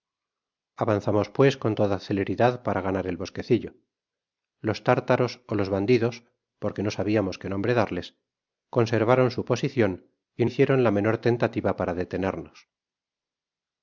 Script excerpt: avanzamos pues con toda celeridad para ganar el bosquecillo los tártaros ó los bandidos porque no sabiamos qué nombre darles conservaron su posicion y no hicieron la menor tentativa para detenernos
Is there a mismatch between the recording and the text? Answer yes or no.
yes